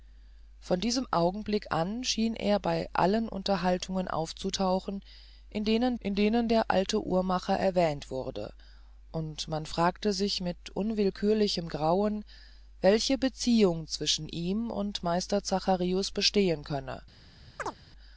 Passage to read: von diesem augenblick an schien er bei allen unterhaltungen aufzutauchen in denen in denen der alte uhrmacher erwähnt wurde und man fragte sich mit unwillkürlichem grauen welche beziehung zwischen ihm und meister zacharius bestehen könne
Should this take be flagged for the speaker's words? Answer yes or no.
no